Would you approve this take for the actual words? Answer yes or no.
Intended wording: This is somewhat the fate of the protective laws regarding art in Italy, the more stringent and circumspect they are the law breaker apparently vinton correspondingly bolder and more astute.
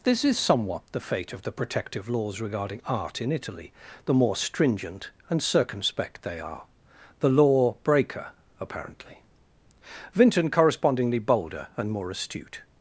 yes